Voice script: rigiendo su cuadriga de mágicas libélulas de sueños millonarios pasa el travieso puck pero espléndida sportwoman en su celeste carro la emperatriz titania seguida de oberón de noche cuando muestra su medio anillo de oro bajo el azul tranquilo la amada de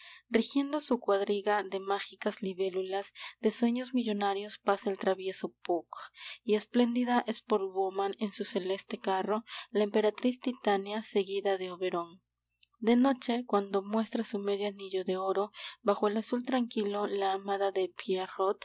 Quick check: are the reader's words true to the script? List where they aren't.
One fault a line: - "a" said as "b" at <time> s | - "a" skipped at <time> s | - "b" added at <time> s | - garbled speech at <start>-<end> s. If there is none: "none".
- "pero" said as "y" at 6.4 s